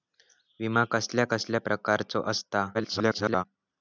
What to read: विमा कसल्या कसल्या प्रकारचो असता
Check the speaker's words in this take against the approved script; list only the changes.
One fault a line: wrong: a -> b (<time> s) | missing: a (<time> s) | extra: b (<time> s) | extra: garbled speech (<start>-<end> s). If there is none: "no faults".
extra: garbled speech (2.7-3.4 s)